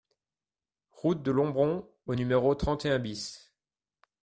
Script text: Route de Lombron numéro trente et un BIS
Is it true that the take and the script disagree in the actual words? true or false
true